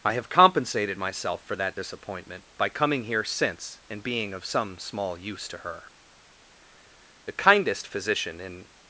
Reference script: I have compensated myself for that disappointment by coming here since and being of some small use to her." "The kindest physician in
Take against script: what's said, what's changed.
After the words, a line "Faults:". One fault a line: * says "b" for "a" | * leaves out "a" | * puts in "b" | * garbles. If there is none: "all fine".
I have compensated myself for that disappointment by coming here since and being of some small use to her." "The kindest physician in
Faults:
all fine